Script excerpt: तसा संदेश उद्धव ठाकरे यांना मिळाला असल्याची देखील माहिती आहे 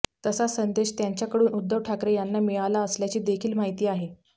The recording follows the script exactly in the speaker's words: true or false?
false